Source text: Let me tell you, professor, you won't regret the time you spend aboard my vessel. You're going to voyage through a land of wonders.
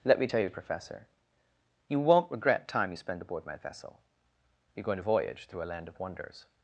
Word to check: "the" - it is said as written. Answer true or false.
false